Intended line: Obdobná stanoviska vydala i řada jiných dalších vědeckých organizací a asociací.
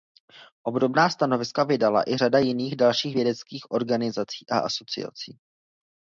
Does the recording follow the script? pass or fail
pass